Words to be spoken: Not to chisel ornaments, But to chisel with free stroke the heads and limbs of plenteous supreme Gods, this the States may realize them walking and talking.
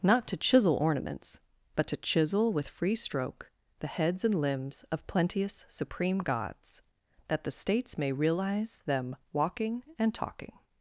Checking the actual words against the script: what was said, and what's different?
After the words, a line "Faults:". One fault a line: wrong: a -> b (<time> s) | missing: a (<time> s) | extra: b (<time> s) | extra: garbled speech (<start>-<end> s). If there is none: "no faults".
Not to chisel ornaments, But to chisel with free stroke the heads and limbs of plenteous supreme Gods, that the States may realize them walking and talking.
Faults:
wrong: this -> that (7.3 s)